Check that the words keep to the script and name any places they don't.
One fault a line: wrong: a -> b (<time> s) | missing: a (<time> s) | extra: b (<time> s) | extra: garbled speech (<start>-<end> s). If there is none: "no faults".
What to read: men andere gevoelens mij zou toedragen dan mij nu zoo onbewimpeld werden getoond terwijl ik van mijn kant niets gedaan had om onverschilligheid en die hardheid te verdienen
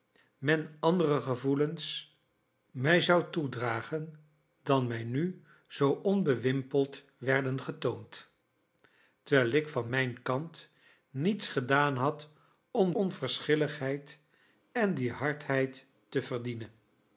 no faults